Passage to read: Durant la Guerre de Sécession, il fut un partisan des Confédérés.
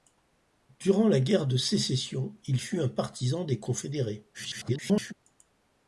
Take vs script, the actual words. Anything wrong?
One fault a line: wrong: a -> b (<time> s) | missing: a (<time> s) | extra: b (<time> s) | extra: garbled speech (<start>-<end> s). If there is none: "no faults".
extra: garbled speech (4.3-5.1 s)